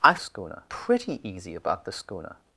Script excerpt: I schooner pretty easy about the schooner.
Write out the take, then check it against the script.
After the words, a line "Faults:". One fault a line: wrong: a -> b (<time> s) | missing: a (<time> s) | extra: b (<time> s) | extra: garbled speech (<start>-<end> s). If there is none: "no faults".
I schooner pretty easy about the schooner.
Faults:
no faults